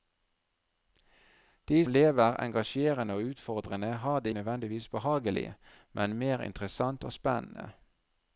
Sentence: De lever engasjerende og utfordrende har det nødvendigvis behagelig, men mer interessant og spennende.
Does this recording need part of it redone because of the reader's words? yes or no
no